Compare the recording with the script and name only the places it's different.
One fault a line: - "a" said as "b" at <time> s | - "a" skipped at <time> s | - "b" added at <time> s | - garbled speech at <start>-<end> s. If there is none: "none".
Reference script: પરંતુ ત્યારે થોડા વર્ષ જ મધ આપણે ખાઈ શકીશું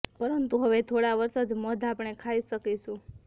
- "ત્યારે" said as "હવે" at 0.6 s